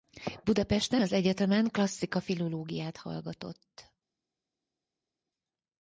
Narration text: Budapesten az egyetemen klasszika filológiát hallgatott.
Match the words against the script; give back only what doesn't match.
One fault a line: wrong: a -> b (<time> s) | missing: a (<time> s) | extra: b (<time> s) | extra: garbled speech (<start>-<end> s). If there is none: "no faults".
no faults